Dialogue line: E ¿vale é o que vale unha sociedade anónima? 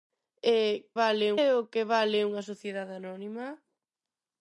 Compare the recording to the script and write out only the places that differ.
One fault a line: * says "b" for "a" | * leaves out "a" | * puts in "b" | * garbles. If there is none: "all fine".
all fine